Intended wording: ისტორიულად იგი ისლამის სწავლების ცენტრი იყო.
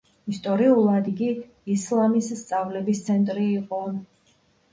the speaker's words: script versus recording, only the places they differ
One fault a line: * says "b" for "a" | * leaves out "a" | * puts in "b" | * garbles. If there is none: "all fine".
all fine